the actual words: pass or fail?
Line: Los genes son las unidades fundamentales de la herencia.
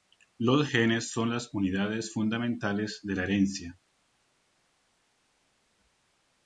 pass